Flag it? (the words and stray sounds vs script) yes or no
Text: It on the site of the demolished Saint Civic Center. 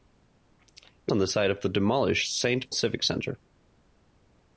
no